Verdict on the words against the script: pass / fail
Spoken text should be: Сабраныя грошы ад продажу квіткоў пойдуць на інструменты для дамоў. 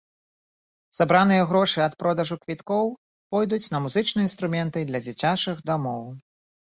fail